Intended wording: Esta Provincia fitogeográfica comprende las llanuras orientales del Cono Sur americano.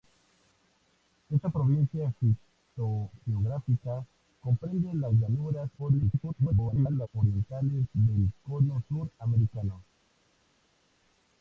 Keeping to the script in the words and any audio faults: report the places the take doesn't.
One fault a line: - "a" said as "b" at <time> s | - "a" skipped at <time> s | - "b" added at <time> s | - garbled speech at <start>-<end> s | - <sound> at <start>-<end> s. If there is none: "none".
- garbled speech at 5.8-7.1 s